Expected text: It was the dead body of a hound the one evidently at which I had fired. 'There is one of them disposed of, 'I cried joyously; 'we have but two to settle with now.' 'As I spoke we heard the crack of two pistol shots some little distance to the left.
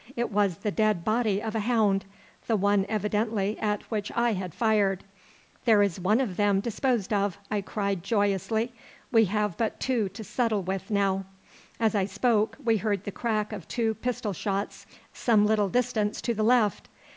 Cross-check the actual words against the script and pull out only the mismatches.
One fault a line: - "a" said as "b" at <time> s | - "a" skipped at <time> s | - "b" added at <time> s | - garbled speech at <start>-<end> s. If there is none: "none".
none